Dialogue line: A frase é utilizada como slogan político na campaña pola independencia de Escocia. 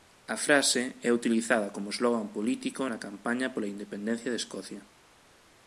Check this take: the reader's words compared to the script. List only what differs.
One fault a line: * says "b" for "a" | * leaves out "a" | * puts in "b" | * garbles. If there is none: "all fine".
all fine